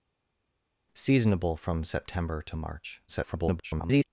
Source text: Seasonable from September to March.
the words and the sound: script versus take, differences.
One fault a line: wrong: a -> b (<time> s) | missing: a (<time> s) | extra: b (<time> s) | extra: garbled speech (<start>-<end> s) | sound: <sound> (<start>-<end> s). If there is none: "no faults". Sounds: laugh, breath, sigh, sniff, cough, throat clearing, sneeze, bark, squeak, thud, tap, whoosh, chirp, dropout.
extra: garbled speech (3.1-4.0 s)